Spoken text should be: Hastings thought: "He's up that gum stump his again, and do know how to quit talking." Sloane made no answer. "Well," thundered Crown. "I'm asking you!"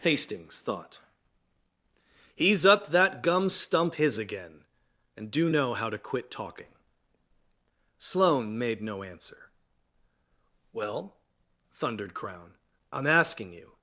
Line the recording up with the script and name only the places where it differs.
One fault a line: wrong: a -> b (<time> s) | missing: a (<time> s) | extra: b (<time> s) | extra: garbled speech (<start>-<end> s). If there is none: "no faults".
no faults